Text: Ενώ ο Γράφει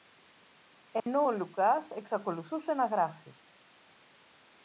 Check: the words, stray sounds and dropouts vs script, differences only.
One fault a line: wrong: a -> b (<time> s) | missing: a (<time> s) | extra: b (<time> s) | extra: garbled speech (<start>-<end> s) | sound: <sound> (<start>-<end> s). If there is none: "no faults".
sound: dropout (1.0-1.1 s)
extra: Λουκάς εξακολουθούσε να (1.3 s)